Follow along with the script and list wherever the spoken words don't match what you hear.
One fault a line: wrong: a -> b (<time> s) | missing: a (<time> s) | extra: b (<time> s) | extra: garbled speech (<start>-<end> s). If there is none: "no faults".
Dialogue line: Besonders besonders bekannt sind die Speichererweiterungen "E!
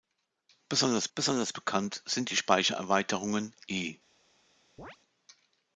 no faults